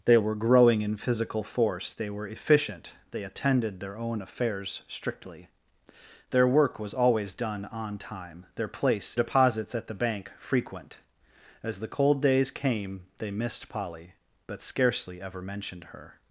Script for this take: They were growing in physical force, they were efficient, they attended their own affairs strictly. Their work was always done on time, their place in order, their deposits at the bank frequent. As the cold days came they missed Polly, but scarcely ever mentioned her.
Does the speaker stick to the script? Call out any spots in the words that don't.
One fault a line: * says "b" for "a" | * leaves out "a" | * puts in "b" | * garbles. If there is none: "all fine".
* leaves out "in order their"